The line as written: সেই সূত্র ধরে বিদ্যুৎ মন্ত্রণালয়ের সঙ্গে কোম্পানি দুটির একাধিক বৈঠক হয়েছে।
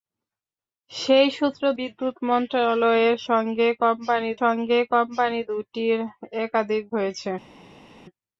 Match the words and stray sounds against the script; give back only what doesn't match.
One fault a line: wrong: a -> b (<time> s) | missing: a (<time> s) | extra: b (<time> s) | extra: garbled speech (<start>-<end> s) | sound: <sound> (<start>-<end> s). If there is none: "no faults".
missing: ধরে (1.6 s)
extra: সঙ্গে কোম্পানি (4.4 s)
missing: বৈঠক (6.8 s)